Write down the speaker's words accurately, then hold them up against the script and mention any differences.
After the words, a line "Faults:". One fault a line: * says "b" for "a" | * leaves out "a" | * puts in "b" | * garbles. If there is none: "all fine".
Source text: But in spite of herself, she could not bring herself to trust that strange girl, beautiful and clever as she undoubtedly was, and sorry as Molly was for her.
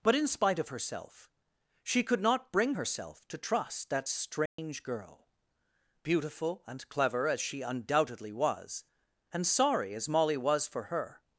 But in spite of herself, she could not bring herself to trust that strange girl, beautiful and clever as she undoubtedly was, and sorry as Molly was for her.
Faults:
all fine